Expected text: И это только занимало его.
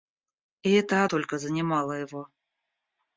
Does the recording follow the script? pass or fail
pass